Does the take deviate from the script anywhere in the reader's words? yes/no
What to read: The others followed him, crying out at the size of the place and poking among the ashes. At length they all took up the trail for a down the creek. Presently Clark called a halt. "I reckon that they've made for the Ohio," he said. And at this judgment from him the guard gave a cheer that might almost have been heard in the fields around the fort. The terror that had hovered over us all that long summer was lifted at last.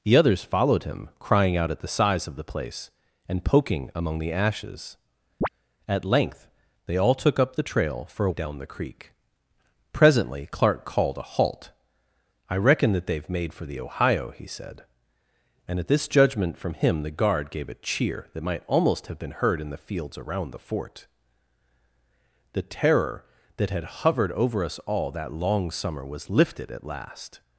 no